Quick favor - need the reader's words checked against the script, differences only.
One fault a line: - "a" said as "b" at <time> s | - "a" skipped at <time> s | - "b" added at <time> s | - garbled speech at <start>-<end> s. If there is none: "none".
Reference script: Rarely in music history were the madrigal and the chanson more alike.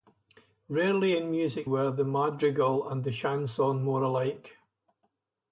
- "history" skipped at 1.7 s